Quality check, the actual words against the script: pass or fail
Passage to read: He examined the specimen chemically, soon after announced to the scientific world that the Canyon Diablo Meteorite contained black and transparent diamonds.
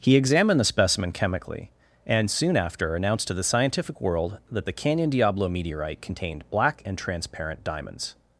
fail